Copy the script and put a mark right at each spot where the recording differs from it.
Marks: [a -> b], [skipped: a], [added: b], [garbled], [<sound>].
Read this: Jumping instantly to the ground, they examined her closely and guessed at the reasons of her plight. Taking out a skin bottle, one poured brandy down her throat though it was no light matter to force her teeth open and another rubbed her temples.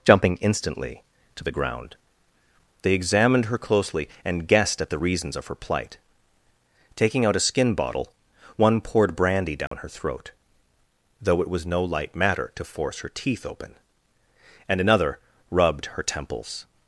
Jumping instantly to the ground, they examined her closely and guessed at the reasons of her plight. Taking out a skin bottle, one poured brandy down [dropout] her throat though it was no light matter to force her teeth open and another rubbed her temples.